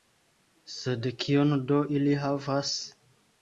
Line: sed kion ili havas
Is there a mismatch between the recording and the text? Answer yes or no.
yes